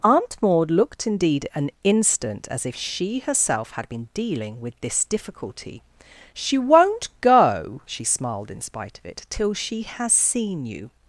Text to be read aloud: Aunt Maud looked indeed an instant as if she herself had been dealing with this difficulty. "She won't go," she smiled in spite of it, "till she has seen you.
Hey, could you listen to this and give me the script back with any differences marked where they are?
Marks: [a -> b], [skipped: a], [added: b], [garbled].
Aunt Maud looked indeed an instant as if she herself had been dealing with this difficulty. "She won't go," she smiled in spite of it, "till she has seen you.